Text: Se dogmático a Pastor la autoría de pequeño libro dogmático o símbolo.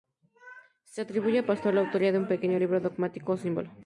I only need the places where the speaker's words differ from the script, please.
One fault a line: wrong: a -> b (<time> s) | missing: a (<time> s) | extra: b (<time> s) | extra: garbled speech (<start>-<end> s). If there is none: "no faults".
wrong: dogmático -> atribuye (1.0 s)
extra: un (2.2 s)